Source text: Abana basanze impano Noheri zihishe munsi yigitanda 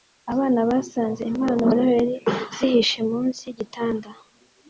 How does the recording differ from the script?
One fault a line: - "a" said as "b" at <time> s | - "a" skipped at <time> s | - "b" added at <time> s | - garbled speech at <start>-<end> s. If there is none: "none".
none